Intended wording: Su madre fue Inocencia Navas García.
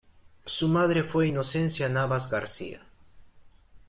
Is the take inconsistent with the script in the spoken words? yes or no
no